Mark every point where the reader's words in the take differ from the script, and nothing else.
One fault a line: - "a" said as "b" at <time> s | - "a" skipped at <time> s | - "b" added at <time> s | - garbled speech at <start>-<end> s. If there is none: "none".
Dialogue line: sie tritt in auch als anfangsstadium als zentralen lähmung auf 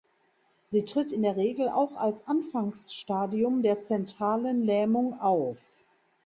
- "der regel" added at 1.2 s
- "als" said as "der" at 3.6 s